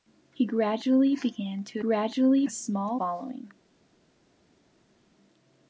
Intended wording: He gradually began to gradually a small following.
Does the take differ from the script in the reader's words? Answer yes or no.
no